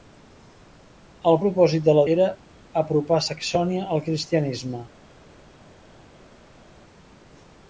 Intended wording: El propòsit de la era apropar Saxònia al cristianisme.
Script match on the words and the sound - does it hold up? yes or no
yes